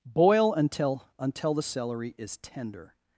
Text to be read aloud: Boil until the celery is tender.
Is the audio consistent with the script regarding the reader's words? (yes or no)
no